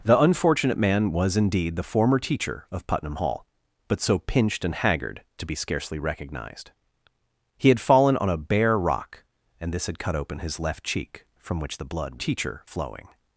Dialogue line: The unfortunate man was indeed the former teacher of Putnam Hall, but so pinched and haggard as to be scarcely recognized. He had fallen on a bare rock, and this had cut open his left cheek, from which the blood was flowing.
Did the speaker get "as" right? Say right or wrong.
wrong